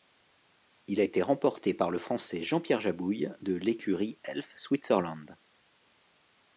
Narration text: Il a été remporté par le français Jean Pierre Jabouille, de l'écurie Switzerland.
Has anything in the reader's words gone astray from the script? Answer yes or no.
yes